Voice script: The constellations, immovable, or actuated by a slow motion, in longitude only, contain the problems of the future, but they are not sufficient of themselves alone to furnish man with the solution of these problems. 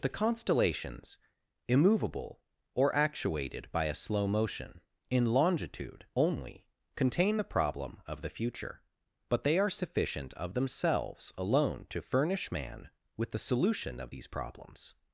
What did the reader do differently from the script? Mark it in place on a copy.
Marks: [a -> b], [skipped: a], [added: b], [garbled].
The constellations, immovable, or actuated by a slow motion, in longitude only, contain the [problems -> problem] of the future, but they are [skipped: not] sufficient of themselves alone to furnish man with the solution of these problems.